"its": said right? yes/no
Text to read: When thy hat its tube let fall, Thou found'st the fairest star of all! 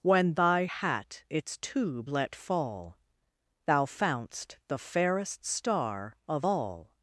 yes